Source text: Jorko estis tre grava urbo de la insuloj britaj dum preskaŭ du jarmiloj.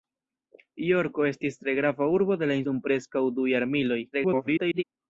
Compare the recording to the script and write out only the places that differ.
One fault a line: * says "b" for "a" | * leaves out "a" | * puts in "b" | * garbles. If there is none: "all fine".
* leaves out "insuloj britaj"
* garbles